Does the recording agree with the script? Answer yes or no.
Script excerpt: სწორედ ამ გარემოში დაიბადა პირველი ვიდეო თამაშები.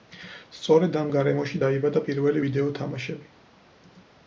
yes